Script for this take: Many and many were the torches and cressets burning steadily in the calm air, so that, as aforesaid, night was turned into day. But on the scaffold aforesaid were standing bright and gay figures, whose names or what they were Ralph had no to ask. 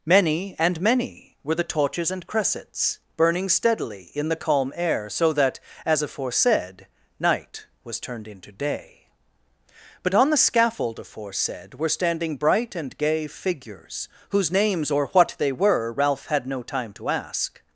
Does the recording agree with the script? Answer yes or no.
no